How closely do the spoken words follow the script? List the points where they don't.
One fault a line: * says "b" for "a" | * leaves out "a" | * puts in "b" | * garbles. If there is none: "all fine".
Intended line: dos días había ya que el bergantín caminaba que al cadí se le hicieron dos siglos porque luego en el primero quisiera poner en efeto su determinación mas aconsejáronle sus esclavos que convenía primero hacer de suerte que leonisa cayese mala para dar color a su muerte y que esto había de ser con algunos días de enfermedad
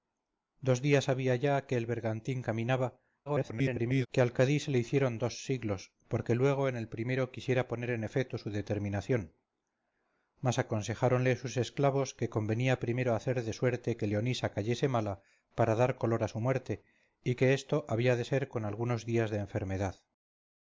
* garbles